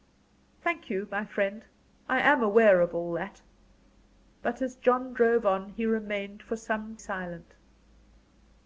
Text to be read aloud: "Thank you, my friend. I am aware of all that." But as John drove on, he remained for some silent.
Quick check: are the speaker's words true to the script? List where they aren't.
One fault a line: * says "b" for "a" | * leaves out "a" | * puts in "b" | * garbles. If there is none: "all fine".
all fine